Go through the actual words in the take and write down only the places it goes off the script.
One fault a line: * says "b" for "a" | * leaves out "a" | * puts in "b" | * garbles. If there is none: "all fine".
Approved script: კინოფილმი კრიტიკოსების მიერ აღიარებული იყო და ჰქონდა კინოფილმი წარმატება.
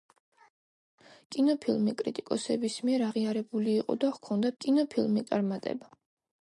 all fine